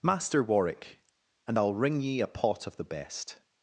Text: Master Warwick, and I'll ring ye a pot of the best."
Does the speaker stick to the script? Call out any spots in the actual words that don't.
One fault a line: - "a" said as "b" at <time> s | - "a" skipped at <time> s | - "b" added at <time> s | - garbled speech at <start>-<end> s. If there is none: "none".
none